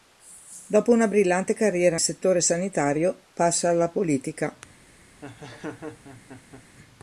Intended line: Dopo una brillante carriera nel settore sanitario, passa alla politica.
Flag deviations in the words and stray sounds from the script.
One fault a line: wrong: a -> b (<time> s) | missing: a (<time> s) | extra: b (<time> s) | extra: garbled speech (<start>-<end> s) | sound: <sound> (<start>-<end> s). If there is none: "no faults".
missing: nel (2.0 s)
sound: laugh (5.2-6.6 s)